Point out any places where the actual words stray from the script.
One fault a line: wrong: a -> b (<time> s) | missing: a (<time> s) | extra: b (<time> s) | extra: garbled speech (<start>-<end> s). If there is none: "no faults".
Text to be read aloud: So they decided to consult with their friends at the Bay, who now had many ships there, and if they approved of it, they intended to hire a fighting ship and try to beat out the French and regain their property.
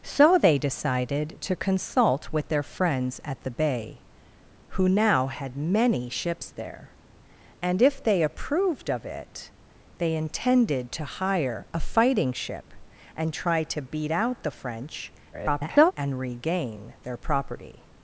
extra: garbled speech (15.3-15.9 s)